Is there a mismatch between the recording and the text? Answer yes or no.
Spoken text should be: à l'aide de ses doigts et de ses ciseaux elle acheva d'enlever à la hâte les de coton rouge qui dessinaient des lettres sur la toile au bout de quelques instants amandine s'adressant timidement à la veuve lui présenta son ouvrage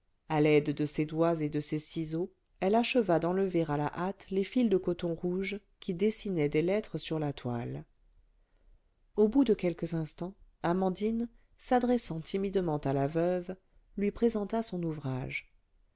yes